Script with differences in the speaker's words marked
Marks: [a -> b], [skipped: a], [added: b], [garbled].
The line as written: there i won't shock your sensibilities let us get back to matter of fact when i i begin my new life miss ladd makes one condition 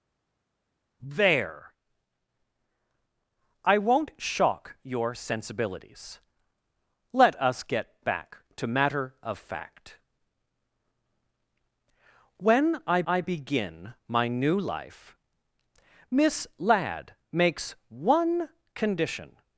there i won't shock your sensibilities let us get back to matter of fact when i i begin my new life miss ladd makes one condition